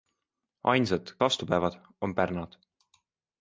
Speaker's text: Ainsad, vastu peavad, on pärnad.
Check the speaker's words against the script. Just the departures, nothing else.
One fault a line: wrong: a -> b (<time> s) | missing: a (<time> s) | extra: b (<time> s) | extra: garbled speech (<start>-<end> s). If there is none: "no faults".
no faults